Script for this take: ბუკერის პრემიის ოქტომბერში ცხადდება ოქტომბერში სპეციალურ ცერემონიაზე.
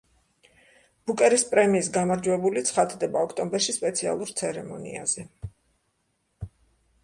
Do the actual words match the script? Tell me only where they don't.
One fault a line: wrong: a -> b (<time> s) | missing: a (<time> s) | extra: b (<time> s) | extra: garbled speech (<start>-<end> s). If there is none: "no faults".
wrong: ოქტომბერში -> გამარჯვებული (2.0 s)